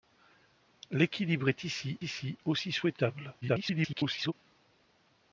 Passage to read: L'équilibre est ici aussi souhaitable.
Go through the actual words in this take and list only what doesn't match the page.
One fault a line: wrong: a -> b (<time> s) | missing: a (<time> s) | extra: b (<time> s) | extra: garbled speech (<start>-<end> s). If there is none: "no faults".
extra: ici (2.0 s)
extra: garbled speech (3.4-4.3 s)